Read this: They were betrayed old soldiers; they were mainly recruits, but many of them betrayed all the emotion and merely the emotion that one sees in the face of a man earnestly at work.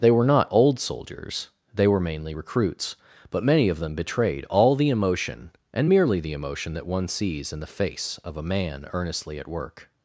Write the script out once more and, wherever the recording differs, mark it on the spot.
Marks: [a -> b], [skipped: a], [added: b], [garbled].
They were [betrayed -> not] old soldiers; they were mainly recruits, but many of them betrayed all the emotion and merely the emotion that one sees in the face of a man earnestly at work.